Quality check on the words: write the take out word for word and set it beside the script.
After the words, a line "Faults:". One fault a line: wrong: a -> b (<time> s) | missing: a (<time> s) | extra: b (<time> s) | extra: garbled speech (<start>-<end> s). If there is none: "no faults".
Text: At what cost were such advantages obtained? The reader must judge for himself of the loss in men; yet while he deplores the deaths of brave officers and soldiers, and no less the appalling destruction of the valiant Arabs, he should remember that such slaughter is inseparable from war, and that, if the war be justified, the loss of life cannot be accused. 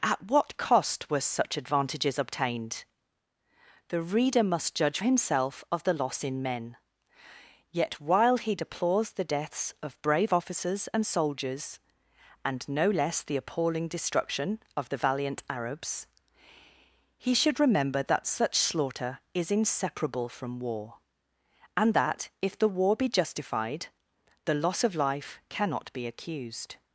At what cost were such advantages obtained? The reader must judge himself of the loss in men; yet while he deplores the deaths of brave officers and soldiers, and no less the appalling destruction of the valiant Arabs, he should remember that such slaughter is inseparable from war, and that, if the war be justified, the loss of life cannot be accused.
Faults:
missing: for (5.0 s)